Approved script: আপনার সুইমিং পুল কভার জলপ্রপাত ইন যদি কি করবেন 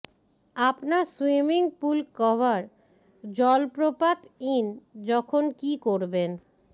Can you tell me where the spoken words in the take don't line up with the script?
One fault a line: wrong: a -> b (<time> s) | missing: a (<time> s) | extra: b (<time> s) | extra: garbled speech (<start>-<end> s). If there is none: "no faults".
wrong: যদি -> যখন (5.1 s)